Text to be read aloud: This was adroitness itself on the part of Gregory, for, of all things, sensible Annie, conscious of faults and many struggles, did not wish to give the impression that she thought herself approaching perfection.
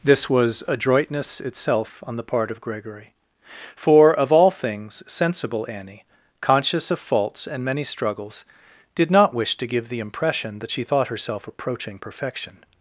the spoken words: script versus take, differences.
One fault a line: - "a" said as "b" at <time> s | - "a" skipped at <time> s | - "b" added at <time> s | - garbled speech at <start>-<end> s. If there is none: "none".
none